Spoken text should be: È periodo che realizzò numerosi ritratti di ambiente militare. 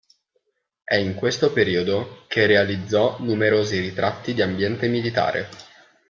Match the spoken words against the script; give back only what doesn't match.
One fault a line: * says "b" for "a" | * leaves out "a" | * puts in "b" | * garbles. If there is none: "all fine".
* puts in "in questo"